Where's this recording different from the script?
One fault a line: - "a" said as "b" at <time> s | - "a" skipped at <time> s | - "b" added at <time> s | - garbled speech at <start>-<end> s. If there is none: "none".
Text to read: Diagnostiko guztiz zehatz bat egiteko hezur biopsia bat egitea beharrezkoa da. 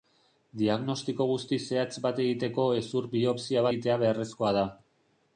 - "bat" skipped at 3.7 s